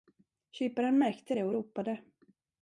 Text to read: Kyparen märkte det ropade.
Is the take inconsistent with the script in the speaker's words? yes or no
yes